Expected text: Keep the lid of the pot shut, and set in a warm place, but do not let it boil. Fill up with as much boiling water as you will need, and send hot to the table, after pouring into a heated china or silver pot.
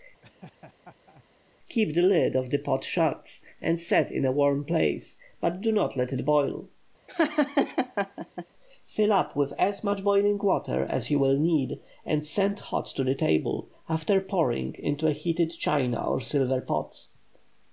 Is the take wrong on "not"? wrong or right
right